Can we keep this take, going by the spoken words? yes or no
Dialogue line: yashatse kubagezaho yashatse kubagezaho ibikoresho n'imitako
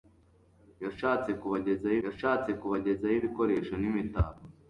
yes